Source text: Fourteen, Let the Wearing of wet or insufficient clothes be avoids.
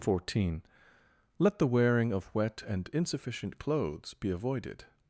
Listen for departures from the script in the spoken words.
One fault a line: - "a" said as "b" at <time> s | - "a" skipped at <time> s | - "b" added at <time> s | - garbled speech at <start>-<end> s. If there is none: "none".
- "or" said as "and" at 2.6 s
- "avoids" said as "avoided" at 4.3 s